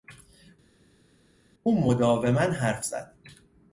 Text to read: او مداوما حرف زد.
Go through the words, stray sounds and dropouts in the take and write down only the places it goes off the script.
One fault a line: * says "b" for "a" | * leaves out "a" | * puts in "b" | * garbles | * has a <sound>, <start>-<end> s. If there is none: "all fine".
all fine